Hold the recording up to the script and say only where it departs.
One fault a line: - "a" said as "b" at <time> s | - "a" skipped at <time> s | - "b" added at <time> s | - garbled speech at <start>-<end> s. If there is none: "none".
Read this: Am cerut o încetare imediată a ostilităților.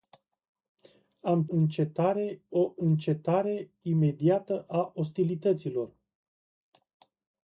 - "cerut" said as "încetare" at 1.5 s